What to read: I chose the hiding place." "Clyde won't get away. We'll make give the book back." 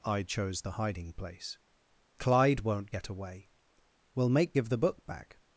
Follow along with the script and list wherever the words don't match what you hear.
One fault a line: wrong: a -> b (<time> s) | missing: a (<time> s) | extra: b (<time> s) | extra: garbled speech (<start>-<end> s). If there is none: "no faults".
no faults